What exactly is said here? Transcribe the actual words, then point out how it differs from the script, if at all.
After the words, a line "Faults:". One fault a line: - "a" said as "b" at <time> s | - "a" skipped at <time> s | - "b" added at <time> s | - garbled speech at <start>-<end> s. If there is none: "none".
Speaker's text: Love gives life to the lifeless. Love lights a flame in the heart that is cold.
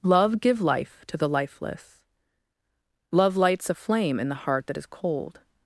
Love give life to the lifeless. Love lights a flame in the heart that is cold.
Faults:
- "gives" said as "give" at 0.4 s